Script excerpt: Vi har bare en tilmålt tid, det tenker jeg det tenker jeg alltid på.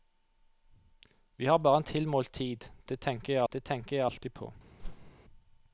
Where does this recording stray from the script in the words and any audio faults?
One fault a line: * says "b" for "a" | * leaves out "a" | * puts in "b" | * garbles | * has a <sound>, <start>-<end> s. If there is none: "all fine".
* has a whoosh, 4.8-5.1 s